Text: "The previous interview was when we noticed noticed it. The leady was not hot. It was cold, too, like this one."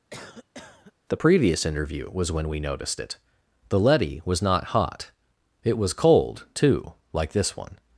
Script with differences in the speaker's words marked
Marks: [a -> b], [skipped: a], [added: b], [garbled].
"The previous interview was when we noticed [skipped: noticed] it. The leady was not hot. It was cold, too, like this one."